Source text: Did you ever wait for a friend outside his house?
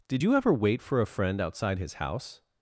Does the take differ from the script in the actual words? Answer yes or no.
no